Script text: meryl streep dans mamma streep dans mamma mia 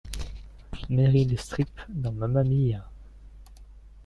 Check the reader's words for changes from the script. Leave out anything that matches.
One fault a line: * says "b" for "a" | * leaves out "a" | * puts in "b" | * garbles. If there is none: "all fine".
* leaves out "streep dans mamma"